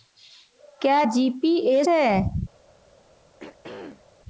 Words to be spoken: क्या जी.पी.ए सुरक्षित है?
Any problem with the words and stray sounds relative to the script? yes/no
yes